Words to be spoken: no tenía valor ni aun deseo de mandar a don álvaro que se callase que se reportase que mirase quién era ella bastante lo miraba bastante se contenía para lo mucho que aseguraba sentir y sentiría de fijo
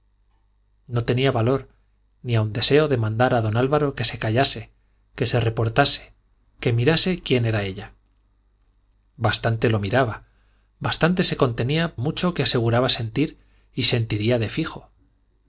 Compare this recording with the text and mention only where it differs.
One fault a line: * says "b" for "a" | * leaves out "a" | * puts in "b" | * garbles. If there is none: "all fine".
* leaves out "para lo"